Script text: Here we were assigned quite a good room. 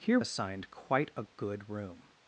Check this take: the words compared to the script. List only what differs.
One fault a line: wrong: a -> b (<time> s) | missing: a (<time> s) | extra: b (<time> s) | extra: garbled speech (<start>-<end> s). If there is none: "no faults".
missing: we were (0.2 s)